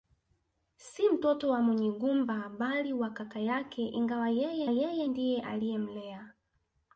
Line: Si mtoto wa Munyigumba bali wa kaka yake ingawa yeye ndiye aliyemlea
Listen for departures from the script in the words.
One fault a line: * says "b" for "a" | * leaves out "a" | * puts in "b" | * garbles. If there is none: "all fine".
* puts in "yeye"